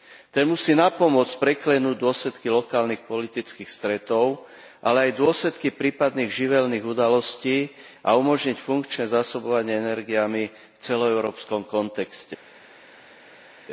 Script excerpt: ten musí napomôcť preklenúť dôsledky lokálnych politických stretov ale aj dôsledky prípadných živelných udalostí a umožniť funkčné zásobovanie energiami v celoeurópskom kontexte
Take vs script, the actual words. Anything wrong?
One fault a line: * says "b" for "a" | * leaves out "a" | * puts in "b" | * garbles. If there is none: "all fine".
all fine